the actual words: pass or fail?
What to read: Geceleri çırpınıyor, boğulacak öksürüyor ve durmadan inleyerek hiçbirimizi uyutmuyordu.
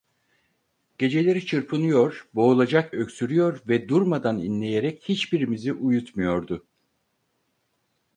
pass